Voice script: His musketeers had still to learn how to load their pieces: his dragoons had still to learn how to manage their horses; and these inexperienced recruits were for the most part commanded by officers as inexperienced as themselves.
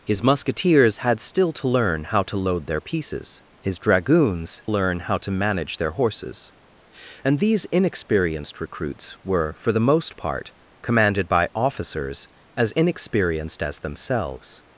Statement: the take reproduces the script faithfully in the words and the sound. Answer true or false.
false